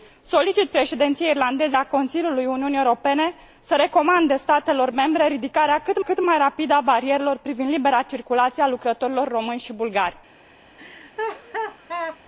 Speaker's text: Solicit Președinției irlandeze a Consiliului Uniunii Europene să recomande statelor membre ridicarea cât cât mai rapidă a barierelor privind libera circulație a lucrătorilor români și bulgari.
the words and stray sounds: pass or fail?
fail